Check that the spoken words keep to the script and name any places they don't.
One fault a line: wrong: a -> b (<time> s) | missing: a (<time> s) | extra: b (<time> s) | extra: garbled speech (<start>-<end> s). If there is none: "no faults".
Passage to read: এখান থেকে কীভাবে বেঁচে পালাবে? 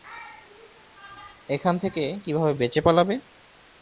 no faults